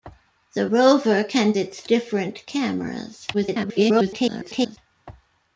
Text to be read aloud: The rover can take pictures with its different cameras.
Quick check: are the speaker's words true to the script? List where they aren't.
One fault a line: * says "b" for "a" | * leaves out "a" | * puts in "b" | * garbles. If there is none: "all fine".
* leaves out "take pictures with"
* garbles